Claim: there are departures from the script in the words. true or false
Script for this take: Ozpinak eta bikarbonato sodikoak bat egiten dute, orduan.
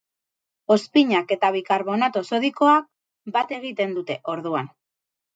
false